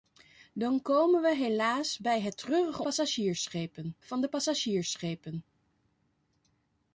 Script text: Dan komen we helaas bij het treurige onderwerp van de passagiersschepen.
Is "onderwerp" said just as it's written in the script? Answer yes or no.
no